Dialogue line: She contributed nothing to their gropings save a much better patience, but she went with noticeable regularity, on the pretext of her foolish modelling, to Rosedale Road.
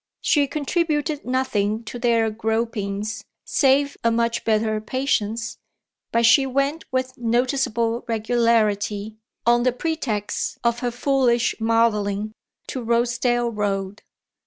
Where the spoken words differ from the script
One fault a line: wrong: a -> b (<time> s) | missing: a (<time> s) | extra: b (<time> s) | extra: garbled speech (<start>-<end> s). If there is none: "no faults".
no faults